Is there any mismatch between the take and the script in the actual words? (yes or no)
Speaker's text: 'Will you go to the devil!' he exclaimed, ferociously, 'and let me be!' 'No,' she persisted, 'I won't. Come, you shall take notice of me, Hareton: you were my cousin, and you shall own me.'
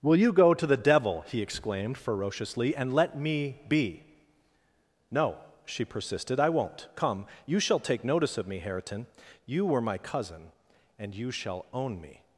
no